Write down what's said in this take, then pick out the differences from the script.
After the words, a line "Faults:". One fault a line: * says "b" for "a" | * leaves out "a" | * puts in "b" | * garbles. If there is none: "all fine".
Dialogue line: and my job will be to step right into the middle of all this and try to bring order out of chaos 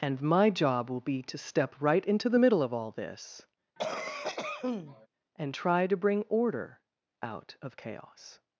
and my job will be to step right into the middle of all this and try to bring order out of chaos
Faults:
all fine